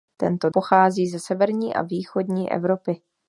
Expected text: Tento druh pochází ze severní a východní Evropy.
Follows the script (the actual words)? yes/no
no